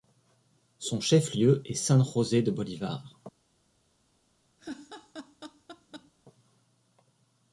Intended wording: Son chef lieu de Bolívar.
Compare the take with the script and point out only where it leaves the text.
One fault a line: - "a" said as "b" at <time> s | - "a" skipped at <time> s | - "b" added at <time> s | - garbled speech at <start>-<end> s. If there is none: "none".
- "est San José" added at 1.6 s